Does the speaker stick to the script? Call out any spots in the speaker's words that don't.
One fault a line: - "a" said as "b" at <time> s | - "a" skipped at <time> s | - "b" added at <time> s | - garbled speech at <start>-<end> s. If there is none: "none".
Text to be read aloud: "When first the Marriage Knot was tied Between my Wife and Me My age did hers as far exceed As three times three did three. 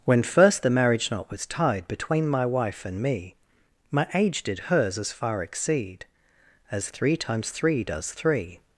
- "did" said as "does" at 7.8 s